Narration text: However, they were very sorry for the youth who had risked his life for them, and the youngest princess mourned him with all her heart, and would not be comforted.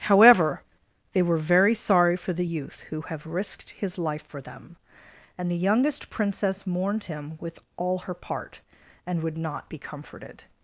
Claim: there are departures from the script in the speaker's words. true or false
true